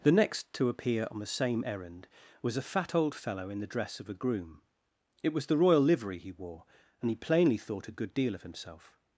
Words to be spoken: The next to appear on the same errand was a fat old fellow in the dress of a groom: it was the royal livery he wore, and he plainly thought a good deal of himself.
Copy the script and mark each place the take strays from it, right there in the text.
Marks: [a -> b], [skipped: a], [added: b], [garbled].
The next to appear on the same errand was a fat old fellow in the dress of a groom: it was the royal livery he wore, and he plainly thought a good deal of himself.